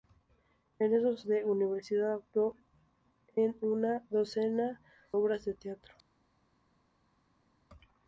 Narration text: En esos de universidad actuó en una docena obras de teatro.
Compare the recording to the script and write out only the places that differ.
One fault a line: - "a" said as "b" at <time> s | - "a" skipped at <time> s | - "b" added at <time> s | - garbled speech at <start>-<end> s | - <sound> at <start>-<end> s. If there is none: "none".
none